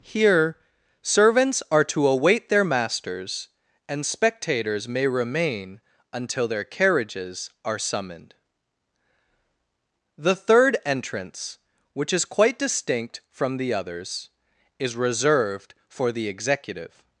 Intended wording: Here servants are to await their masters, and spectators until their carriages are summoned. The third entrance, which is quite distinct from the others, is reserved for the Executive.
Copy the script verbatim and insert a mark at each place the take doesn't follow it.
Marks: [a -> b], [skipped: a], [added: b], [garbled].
Here servants are to await their masters, and spectators [added: may remain] until their carriages are summoned. The third entrance, which is quite distinct from the others, is reserved for the Executive.